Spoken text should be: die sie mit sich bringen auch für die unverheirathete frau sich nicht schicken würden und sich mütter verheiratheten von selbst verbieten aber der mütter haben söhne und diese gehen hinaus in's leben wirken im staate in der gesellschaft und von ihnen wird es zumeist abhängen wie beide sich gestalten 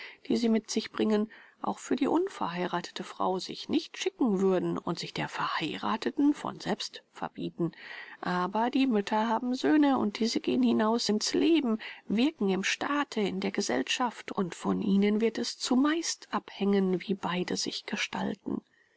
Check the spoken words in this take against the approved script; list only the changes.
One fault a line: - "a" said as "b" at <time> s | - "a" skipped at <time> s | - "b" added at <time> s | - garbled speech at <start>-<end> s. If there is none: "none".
- "mütter" said as "der" at 5.1 s
- "der" said as "die" at 8.7 s